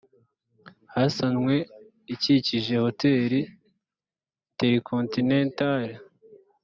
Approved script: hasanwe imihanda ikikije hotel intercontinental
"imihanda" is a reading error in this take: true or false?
true